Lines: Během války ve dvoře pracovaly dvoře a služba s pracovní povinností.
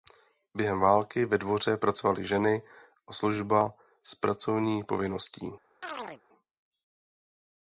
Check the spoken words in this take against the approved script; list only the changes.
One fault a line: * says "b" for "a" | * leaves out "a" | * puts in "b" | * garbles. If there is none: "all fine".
* says "ženy" for "dvoře"